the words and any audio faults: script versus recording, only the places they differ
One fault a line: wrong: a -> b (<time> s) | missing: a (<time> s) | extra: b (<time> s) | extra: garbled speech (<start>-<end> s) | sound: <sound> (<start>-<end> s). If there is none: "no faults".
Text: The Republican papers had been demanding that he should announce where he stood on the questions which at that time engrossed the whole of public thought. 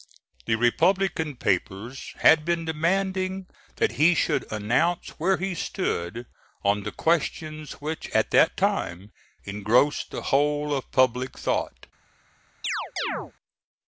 sound: chirp (12.6-13.3 s)